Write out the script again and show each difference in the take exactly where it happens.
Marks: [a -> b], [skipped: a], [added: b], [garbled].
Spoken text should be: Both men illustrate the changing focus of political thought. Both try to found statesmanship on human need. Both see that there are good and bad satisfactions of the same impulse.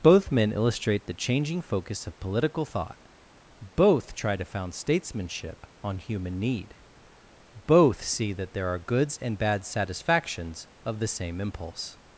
Both men illustrate the changing focus of political thought. Both try to found statesmanship on human need. Both see that there are [good -> goods] and bad satisfactions of the same impulse.